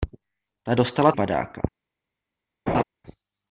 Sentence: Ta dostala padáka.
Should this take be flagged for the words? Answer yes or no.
no